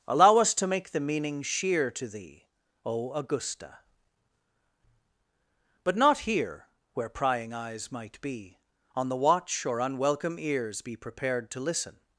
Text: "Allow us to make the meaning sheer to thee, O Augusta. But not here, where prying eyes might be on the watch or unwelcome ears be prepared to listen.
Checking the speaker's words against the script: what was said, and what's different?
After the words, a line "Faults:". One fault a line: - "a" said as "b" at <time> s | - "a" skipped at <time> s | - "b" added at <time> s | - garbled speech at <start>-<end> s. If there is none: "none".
"Allow us to make the meaning sheer to thee, O Augusta. But not here, where prying eyes might be on the watch or unwelcome ears be prepared to listen.
Faults:
none